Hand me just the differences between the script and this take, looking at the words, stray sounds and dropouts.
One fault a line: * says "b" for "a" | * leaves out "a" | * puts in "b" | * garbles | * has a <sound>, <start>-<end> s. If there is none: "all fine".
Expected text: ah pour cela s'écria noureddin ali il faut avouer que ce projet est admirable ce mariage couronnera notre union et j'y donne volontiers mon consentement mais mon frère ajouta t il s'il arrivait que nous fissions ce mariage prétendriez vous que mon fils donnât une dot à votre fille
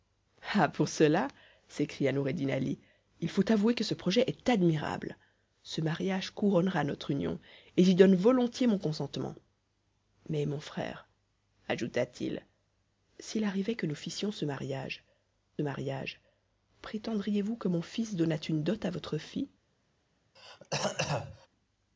* puts in "mariage"
* has a throat clearing, 20.4-21.5 s